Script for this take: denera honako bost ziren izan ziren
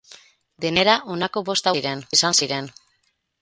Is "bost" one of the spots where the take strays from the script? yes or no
no